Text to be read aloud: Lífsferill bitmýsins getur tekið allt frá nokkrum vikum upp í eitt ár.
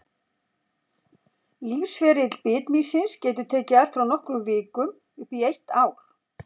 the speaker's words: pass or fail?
pass